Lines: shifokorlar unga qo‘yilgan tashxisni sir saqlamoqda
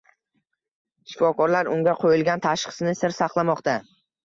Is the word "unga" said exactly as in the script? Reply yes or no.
yes